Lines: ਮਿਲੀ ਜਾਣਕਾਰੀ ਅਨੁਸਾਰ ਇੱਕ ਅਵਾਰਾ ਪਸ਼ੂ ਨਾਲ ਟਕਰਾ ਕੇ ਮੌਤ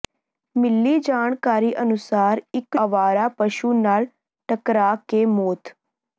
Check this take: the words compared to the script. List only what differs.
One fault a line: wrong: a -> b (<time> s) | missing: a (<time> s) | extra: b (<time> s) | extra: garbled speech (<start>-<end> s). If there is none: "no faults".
no faults